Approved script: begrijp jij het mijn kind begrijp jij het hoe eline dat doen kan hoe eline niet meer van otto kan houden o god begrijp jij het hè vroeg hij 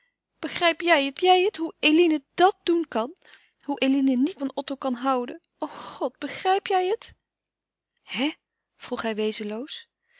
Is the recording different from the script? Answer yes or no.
yes